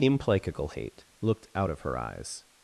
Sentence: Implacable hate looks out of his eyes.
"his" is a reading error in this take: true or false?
true